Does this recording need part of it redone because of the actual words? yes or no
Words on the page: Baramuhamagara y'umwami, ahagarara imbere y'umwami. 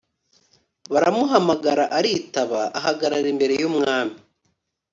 yes